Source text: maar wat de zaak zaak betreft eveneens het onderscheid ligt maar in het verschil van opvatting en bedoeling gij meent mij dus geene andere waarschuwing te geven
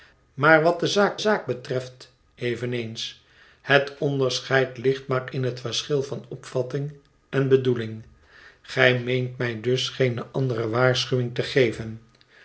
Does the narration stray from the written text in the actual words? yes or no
no